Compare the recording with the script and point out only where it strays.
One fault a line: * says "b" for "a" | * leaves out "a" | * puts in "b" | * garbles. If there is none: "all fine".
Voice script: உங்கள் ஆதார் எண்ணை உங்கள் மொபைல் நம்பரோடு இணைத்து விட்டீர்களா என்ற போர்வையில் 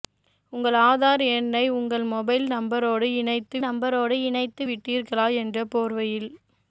* puts in "நம்பரோடு இணைத்து"